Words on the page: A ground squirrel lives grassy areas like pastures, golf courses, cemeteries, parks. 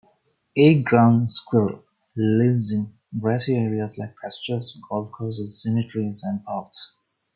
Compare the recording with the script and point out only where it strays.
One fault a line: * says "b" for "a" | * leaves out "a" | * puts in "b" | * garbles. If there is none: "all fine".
* puts in "in"
* puts in "and"